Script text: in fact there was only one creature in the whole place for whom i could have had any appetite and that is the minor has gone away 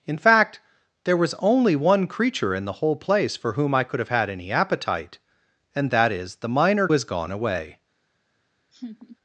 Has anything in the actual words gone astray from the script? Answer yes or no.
no